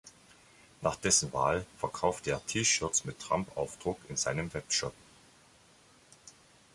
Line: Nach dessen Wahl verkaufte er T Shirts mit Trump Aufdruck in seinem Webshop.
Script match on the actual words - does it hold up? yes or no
yes